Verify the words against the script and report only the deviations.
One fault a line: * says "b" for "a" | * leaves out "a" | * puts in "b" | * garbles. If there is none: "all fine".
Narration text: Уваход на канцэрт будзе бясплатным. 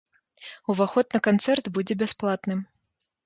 all fine